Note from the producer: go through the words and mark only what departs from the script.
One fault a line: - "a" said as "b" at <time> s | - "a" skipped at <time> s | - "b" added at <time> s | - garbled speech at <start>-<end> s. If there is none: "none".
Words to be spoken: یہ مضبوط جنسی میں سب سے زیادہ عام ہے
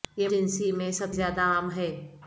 - "مضبوط" skipped at 0.3 s
- "سے" skipped at 1.1 s